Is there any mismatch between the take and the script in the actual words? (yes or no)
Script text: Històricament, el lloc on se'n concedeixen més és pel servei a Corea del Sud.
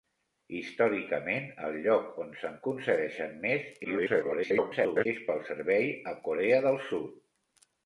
yes